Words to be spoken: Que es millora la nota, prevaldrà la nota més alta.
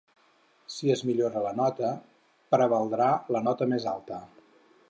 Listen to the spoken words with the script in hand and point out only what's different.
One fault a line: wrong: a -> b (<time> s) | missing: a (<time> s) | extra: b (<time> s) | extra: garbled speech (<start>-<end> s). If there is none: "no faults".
wrong: Que -> Si (0.8 s)